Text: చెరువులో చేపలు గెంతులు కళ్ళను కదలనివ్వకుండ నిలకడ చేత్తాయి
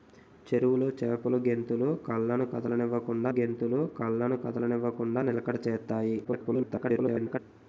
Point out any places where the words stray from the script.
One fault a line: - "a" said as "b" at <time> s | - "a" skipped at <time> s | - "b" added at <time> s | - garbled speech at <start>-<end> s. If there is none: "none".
- "గెంతులు కళ్ళను కదలనివ్వకుండ" added at 3.3 s
- garbled speech at 6.2-7.4 s